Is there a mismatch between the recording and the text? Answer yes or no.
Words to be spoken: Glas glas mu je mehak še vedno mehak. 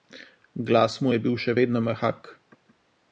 yes